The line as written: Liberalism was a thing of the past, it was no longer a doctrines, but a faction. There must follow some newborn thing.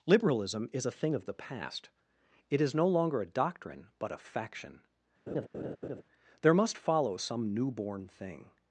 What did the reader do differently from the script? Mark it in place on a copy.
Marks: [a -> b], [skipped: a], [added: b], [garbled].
Liberalism [was -> is] a thing of the past, it [was -> is] no longer a [doctrines, -> doctrine] but a faction. There must follow some newborn thing.